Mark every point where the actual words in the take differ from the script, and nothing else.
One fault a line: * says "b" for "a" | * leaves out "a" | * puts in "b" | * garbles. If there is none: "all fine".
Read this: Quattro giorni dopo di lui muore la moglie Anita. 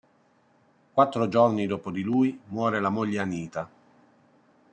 all fine